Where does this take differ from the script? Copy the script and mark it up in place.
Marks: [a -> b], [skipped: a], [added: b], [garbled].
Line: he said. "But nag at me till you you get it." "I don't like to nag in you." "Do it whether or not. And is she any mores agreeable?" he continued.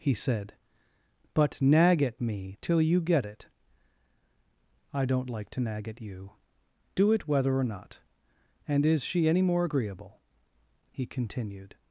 he said. "But nag at me till you [skipped: you] get it." "I don't like to nag [in -> at] you." "Do it whether or not. And is she any [mores -> more] agreeable?" he continued.